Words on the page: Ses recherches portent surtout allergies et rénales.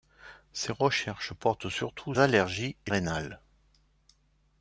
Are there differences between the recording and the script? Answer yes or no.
no